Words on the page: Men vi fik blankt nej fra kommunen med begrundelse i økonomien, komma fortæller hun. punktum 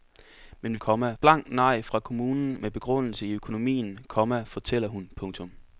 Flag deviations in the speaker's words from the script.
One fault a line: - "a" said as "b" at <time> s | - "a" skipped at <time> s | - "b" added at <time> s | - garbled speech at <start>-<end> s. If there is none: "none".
- "fik" said as "komma" at 0.8 s